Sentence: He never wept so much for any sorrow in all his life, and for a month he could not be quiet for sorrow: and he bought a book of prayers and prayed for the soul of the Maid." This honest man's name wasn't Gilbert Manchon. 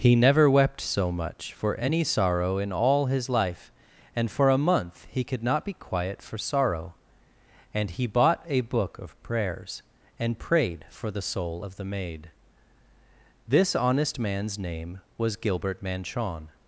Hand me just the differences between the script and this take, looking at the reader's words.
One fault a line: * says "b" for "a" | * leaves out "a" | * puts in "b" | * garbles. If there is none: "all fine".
* says "was" for "wasn't"